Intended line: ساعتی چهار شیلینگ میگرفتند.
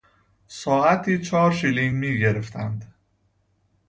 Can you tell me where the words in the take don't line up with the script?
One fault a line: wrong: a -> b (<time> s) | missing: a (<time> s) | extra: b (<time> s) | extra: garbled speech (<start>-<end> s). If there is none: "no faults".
no faults